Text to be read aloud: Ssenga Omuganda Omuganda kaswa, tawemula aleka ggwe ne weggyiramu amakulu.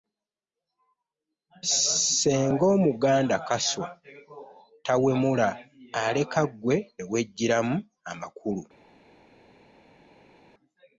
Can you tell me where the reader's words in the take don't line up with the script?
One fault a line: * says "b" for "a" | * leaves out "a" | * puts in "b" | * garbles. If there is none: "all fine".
* leaves out "Omuganda"